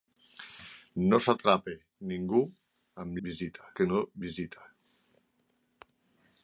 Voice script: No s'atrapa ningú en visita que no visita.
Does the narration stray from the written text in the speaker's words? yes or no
no